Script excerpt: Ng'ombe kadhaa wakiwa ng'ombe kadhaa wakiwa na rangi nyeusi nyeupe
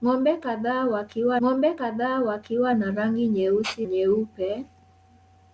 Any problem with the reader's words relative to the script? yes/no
no